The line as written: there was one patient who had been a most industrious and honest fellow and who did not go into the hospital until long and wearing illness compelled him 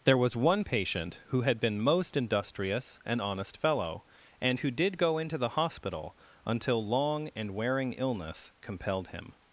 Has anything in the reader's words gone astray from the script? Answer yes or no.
yes